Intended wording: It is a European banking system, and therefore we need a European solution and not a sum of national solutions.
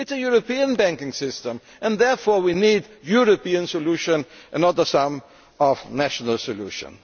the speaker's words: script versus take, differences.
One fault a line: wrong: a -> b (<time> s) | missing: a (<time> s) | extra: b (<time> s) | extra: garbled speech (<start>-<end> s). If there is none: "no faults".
no faults